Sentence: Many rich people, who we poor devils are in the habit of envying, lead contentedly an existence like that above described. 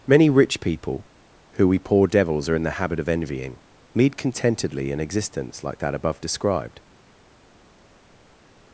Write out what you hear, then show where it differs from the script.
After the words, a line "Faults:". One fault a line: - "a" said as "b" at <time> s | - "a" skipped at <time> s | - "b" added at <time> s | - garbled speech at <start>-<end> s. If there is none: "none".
Many rich people, who we poor devils are in the habit of envying, lead contentedly an existence like that above described.
Faults:
none